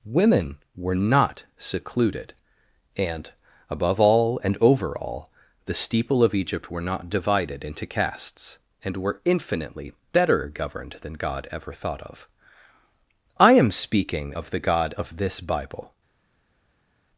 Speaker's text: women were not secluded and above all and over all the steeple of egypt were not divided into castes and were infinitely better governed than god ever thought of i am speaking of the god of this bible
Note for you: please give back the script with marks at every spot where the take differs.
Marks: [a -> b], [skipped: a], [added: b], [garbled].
women were not secluded and above all and over all the steeple of egypt were not divided into castes and were infinitely better governed than god ever thought of i am speaking of the god of this bible